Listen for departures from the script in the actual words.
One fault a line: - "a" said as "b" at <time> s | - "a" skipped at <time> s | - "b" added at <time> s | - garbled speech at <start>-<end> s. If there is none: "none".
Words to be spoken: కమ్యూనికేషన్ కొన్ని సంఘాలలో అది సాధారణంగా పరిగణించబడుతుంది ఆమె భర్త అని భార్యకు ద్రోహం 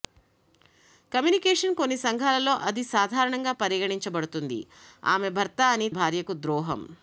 none